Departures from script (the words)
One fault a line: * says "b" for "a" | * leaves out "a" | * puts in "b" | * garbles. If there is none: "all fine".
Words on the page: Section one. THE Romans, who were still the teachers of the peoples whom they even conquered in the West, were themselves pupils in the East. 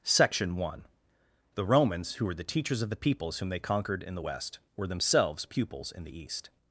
* leaves out "still"
* leaves out "even"